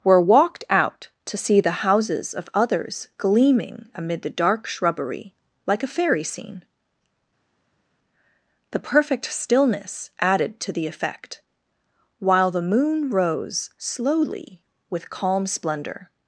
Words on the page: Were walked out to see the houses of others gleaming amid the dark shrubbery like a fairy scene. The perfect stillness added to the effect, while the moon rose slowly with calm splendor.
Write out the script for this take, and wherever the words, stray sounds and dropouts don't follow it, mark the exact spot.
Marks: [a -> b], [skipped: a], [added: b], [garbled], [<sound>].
Were walked out to see the houses of others gleaming amid the dark shrubbery like a fairy scene. The perfect stillness added to the effect, while the moon rose slowly with calm splendor.